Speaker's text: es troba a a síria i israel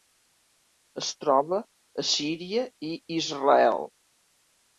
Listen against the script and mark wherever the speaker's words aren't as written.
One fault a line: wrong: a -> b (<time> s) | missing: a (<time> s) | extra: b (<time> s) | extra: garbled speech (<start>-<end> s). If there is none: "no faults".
missing: a (2.1 s)